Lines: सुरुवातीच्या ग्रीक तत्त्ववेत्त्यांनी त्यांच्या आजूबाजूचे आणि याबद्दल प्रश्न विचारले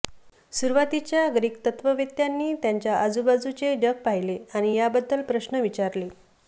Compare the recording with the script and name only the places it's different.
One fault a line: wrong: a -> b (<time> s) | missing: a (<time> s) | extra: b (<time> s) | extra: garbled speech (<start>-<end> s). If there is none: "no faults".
extra: जग पाहिले (3.8 s)